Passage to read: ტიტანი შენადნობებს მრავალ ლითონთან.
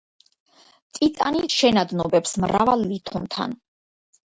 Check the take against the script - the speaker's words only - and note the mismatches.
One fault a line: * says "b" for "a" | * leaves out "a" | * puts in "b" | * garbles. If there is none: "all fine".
all fine